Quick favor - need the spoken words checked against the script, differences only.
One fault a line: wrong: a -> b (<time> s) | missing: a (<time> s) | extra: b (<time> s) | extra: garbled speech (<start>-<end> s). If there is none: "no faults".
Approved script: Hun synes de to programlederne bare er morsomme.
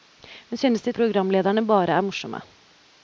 missing: to (0.9 s)